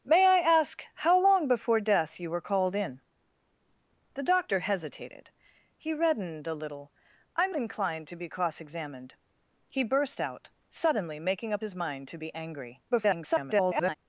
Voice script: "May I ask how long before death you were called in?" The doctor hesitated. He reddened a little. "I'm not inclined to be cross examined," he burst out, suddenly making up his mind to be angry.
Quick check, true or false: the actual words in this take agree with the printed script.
false